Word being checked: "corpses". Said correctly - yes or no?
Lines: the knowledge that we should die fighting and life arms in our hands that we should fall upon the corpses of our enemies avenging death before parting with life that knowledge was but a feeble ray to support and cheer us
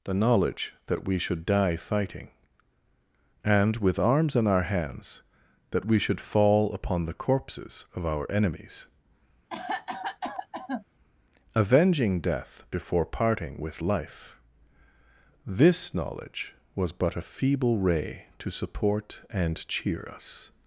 yes